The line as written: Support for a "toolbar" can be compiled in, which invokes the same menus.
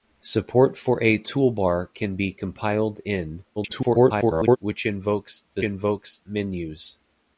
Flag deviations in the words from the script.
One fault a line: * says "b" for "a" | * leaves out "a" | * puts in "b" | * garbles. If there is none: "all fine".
* garbles
* says "invokes" for "same"